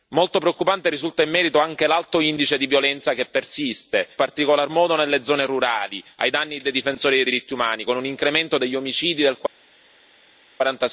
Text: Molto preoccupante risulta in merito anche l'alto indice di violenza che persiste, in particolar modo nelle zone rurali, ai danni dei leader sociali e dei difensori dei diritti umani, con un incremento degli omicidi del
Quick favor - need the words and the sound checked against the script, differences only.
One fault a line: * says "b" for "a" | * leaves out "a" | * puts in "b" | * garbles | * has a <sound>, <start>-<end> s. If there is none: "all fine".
* leaves out "in"
* leaves out "dei leader sociali"